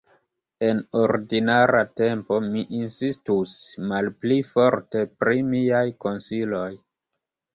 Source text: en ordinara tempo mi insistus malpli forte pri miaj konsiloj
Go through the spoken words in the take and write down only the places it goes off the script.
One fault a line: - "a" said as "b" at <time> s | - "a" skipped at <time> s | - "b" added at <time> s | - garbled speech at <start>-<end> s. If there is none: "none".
none